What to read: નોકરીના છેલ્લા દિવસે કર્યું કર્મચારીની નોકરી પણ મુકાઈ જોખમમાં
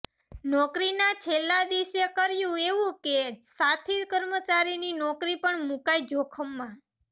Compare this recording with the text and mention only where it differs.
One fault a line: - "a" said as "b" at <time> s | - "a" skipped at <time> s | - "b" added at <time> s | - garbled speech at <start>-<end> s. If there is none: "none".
- "એવું કે સાથી" added at 2.7 s